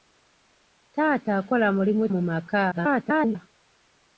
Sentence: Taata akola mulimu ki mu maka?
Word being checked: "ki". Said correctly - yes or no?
no